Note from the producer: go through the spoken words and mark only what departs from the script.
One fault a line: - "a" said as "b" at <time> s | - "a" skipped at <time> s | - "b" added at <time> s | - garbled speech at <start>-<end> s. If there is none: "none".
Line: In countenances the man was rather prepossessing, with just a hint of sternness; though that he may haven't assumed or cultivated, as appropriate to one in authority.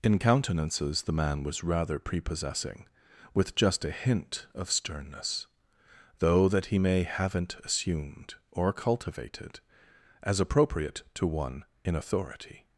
none